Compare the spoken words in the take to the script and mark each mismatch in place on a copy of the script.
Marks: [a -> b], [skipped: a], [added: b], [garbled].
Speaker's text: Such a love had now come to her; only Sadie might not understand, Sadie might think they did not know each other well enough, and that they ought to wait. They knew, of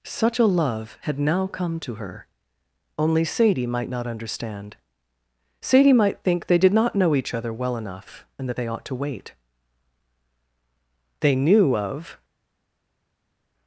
Such a love had now come to her; only Sadie might not understand, Sadie might think they did not know each other well enough, and that they ought to wait. They knew, of